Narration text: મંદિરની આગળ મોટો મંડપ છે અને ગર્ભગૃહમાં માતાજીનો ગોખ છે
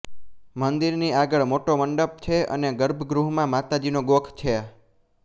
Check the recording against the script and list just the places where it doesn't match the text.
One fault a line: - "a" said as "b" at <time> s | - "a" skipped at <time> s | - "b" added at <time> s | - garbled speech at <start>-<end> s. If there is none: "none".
none